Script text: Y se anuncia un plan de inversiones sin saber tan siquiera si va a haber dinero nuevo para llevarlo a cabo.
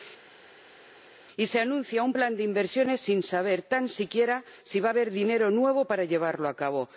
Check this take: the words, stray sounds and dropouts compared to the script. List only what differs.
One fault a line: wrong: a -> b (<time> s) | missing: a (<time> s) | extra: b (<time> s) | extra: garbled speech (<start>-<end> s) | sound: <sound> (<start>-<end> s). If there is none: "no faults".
no faults